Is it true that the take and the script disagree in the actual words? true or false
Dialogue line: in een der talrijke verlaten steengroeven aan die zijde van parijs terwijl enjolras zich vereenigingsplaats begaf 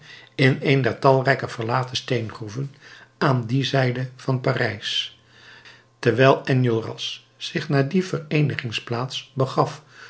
true